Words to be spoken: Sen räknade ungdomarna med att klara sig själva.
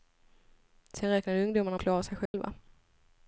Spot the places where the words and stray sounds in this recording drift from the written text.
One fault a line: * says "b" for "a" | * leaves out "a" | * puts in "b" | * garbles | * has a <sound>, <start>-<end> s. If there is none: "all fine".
* leaves out "med"
* has a dropout, 2.3-2.3 s